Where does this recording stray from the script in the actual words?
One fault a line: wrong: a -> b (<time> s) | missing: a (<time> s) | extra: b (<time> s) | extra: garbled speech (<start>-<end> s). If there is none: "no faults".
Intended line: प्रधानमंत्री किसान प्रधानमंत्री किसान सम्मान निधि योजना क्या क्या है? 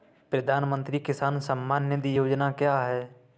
missing: प्रधानमंत्री किसान (1.4 s)
missing: क्या (2.8 s)